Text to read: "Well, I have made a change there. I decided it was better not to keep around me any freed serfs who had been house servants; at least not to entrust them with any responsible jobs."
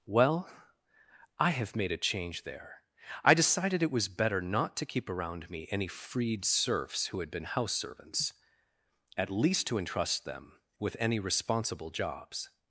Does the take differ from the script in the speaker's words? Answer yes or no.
yes